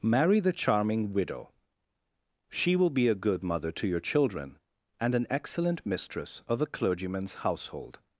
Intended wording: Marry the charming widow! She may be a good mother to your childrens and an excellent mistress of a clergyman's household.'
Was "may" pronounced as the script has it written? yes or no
no